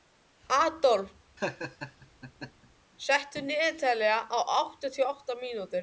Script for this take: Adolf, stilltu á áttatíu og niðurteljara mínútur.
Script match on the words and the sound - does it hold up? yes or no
no